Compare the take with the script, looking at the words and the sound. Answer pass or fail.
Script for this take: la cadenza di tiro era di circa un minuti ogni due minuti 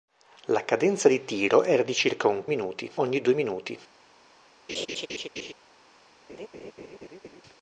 fail